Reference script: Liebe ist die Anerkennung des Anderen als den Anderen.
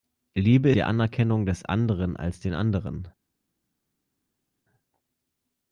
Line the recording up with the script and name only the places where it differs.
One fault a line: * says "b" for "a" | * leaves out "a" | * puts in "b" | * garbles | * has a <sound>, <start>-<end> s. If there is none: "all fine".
* leaves out "ist"